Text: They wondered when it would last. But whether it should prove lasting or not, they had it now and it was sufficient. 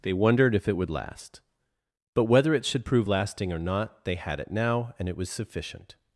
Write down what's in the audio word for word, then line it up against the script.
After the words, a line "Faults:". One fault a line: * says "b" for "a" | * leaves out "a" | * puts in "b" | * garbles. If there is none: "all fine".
They wondered if it would last. But whether it should prove lasting or not, they had it now and it was sufficient.
Faults:
* says "if" for "when"